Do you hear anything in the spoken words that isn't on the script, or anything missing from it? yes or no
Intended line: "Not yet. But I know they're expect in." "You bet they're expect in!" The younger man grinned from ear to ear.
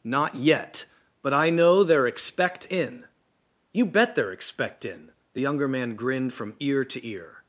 no